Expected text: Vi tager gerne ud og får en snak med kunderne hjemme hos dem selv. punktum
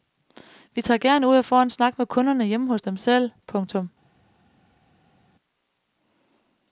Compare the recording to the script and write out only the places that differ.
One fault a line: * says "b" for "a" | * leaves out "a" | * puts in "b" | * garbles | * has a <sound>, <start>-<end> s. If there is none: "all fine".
all fine